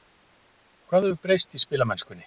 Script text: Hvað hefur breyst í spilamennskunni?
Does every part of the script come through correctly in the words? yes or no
yes